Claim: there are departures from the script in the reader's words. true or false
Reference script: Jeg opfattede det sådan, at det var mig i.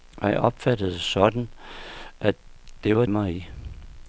false